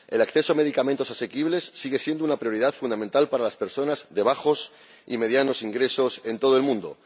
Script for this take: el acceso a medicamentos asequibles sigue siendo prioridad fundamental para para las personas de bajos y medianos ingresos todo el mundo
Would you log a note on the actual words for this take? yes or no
yes